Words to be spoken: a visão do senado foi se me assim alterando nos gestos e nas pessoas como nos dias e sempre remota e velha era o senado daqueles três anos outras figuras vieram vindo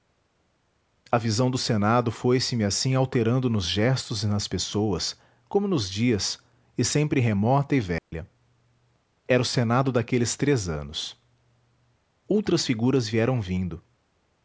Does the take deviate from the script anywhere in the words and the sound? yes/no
yes